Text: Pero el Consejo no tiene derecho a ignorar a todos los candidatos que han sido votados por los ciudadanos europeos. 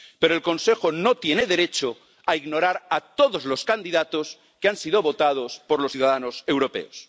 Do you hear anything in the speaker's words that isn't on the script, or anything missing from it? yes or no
no